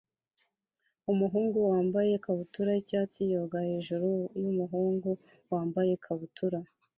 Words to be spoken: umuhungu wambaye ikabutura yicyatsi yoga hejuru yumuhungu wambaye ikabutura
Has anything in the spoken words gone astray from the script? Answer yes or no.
no